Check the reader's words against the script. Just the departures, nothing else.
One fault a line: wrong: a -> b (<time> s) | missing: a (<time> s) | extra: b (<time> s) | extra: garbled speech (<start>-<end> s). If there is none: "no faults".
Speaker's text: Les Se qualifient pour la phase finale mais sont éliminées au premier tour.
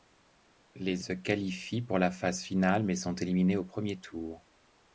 no faults